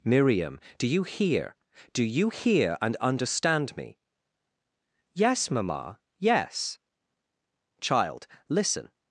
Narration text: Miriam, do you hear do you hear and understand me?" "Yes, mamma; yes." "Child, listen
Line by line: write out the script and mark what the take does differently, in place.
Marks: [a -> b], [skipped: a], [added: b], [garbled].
Miriam, do you hear do you hear and understand me?" "Yes, mamma; yes." "Child, listen